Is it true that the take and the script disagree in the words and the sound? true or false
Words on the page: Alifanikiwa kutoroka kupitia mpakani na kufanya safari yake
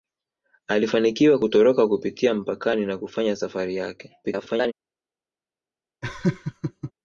true